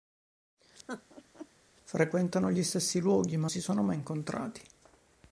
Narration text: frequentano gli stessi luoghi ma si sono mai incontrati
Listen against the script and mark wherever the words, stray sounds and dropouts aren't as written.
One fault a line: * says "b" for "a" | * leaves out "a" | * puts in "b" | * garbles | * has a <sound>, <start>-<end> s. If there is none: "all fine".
* has a laugh, 0.9-1.5 s